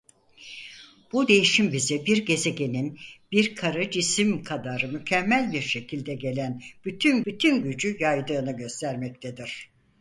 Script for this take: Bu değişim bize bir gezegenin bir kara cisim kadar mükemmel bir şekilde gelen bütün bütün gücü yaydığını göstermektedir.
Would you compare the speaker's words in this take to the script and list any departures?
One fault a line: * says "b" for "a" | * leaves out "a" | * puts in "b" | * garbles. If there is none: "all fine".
all fine